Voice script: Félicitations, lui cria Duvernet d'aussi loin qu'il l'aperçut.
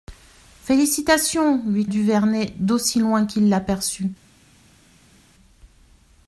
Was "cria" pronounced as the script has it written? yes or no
no